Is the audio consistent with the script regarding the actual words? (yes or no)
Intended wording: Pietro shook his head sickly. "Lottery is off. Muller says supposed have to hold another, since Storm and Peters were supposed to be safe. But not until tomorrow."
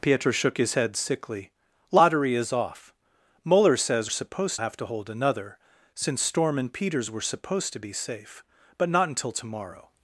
yes